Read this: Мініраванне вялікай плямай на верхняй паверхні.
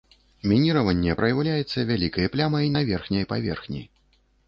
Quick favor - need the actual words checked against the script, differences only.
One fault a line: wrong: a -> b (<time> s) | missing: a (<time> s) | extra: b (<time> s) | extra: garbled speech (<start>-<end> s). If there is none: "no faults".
extra: праяўляецца (1.2 s)